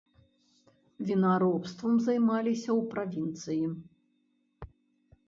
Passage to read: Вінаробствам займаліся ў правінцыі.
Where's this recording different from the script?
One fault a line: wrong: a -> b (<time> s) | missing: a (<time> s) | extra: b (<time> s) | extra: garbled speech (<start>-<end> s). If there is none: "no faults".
no faults